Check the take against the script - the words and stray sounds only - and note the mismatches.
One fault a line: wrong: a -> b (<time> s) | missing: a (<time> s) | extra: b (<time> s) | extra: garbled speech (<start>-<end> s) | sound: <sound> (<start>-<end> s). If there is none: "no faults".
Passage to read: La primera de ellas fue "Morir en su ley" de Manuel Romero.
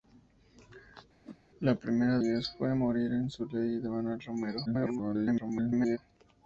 sound: whoosh (1.2-1.4 s)
missing: de (2.2 s)
extra: garbled speech (4.7-6.0 s)